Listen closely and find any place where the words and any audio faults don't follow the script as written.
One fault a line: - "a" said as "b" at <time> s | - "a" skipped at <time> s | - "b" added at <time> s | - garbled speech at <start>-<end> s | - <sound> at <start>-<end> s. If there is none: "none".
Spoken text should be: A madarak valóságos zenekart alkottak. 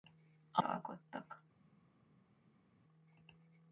- "madarak valóságos zenekart" skipped at 0.6 s